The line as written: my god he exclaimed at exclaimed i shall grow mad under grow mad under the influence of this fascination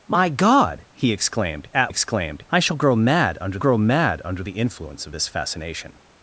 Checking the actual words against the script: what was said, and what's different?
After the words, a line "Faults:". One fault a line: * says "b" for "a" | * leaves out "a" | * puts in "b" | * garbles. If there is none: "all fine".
my god he exclaimed at exclaimed i shall grow mad under grow mad under the influence of this fascination
Faults:
all fine